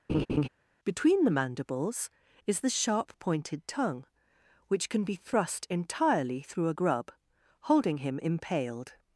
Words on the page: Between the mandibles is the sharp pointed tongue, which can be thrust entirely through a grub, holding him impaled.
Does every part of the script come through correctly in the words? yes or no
yes